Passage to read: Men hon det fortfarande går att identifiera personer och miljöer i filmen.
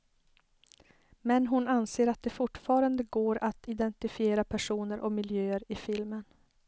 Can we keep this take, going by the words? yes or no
no